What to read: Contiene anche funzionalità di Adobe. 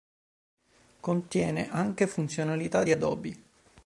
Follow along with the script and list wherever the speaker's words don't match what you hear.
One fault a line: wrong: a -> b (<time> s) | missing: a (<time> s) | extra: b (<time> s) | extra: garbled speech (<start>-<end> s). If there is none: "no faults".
no faults